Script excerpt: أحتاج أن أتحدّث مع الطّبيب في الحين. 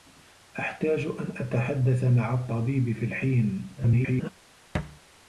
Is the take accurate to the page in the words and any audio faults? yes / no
no